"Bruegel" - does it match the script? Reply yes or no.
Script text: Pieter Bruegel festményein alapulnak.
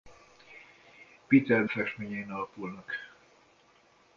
no